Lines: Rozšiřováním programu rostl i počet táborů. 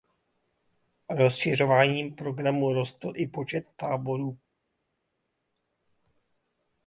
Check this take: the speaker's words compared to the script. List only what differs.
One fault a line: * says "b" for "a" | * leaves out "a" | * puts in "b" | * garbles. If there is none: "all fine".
all fine